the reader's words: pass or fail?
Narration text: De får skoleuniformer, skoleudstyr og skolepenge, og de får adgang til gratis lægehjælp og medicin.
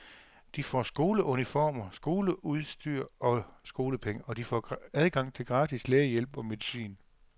pass